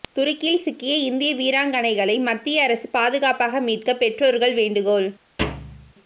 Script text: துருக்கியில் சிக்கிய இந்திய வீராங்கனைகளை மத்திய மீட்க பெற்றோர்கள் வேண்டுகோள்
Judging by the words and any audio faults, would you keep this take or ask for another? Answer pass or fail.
fail